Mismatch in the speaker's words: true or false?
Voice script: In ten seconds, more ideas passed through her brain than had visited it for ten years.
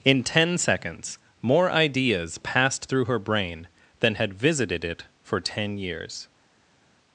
false